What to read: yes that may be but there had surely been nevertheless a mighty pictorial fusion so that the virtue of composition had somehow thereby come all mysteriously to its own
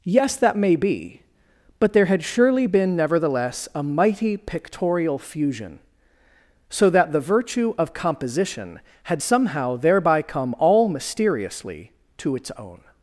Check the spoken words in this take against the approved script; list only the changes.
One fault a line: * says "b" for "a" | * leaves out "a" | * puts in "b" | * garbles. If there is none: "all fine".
all fine